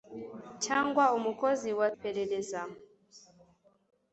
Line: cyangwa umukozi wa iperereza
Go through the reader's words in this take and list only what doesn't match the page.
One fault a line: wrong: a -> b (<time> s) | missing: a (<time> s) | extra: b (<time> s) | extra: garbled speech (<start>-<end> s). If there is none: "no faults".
no faults